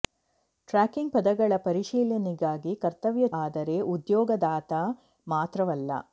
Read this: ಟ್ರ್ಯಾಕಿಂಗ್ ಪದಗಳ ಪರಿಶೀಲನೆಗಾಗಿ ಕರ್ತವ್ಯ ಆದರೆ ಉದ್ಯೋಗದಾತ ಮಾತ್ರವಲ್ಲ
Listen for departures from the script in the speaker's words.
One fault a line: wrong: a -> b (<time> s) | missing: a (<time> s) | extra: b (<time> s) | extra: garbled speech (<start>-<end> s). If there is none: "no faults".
no faults